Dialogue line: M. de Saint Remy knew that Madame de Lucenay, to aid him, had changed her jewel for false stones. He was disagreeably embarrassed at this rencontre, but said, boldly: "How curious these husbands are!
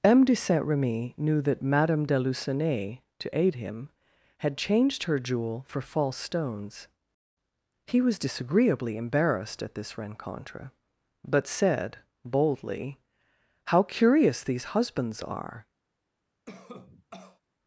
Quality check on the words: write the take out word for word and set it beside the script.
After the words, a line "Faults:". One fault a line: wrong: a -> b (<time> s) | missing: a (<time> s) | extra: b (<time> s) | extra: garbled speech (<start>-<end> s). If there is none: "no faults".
M. de Saint Remy knew that Madame de Lucenay, to aid him, had changed her jewel for false stones. He was disagreeably embarrassed at this rencontre, but said, boldly: "How curious these husbands are!
Faults:
no faults